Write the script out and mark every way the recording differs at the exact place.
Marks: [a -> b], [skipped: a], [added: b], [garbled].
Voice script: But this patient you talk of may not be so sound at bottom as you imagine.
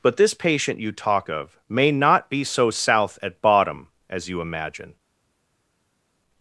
But this patient you talk of may not be so [sound -> south] at bottom as you imagine.